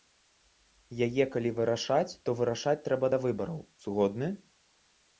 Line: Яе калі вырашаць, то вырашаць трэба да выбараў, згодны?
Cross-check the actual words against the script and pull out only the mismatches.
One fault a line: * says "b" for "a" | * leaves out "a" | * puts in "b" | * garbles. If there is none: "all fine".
all fine